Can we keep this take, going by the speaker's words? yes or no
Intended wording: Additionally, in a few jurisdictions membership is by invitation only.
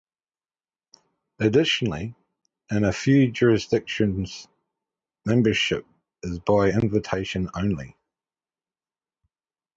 yes